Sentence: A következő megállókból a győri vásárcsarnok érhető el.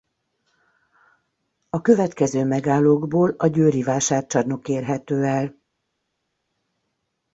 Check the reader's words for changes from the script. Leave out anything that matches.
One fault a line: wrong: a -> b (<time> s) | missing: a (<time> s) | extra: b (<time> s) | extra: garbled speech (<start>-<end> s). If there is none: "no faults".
no faults